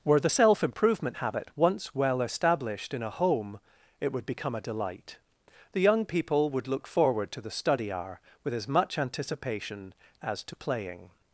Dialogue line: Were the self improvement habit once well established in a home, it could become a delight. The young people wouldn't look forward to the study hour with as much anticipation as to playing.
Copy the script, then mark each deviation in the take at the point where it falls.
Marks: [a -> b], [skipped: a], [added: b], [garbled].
Were the self improvement habit once well established in a home, it [could -> would] become a delight. The young people [wouldn't -> would] look forward to the study hour with as much anticipation as to playing.